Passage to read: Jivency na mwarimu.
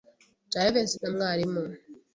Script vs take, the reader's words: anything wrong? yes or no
no